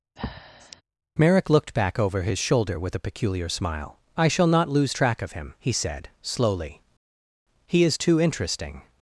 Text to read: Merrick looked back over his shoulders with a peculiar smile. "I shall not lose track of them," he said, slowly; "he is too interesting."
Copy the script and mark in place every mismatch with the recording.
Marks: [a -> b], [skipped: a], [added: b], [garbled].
Merrick looked back over his [shoulders -> shoulder] with a peculiar smile. "I shall not lose track of [them," -> him] he said, slowly; "he is too interesting."